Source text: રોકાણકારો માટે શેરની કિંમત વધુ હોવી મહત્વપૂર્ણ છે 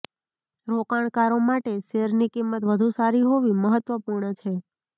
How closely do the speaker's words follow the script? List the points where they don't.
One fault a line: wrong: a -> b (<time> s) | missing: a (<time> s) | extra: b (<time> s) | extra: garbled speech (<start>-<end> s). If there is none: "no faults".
extra: સારી (2.9 s)